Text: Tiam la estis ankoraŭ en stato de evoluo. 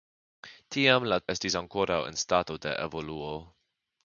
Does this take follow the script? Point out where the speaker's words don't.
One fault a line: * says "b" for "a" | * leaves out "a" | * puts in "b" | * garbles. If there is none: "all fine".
all fine